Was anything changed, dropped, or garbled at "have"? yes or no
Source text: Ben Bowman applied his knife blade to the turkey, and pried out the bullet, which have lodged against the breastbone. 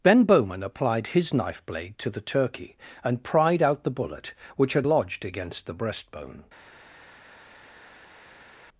yes